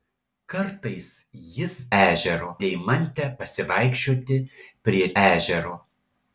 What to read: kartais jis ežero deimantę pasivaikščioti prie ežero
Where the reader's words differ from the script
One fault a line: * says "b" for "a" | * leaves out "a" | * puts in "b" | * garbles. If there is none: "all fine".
all fine